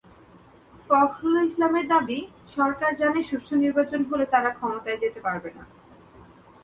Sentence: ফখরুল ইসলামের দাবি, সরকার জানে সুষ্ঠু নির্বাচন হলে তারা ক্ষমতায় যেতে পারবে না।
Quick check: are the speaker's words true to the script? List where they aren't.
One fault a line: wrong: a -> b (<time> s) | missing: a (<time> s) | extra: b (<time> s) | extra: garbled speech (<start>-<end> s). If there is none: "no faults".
no faults